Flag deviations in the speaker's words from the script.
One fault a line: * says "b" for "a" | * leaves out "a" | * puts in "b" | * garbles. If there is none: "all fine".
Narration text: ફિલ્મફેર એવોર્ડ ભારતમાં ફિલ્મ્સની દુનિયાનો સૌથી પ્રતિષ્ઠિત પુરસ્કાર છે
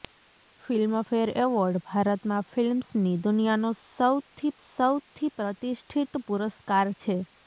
* puts in "સૌથી"